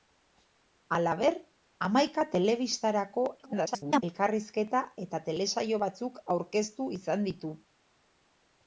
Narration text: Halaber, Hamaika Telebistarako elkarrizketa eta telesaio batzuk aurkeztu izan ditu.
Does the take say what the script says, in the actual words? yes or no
no